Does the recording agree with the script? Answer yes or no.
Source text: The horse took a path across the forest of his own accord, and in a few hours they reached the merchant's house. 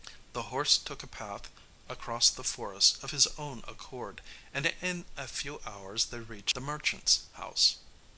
yes